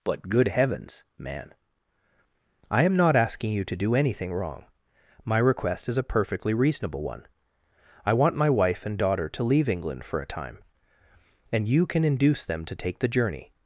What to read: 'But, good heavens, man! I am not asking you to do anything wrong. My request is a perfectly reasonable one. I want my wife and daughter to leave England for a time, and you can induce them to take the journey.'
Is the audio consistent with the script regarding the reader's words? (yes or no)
yes